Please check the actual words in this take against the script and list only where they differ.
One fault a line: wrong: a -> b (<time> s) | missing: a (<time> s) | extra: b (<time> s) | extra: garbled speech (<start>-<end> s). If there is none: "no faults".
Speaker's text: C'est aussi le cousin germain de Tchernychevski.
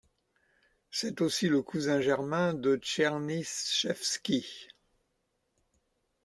no faults